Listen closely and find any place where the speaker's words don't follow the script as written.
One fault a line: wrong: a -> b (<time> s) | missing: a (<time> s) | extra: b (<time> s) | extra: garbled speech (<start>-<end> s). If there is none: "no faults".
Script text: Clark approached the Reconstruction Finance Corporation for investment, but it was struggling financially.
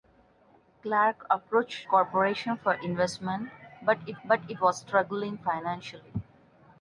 missing: the Reconstruction Finance (1.9 s)
extra: but it (4.2 s)